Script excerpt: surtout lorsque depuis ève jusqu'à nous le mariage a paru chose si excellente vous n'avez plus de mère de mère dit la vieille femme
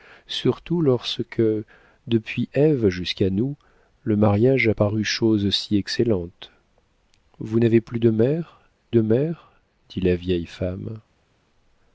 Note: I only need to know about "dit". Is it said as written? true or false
true